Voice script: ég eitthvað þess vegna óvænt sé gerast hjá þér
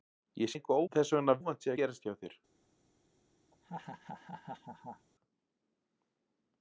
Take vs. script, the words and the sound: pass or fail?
fail